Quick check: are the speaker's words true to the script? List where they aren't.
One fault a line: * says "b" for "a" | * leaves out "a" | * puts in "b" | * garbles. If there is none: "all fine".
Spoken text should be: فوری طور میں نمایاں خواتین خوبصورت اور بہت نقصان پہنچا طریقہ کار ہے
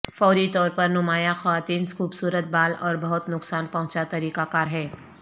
* says "پر" for "میں"
* puts in "بال"